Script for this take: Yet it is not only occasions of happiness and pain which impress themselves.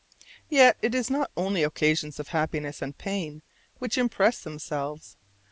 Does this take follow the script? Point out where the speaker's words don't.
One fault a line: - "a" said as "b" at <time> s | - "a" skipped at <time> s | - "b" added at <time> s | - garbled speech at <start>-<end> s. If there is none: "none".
none